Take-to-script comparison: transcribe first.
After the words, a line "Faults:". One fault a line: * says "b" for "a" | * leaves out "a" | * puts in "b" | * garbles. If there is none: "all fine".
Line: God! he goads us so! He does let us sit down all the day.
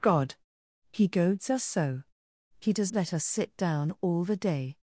God! he goads us so! He does let us sit down all the day.
Faults:
all fine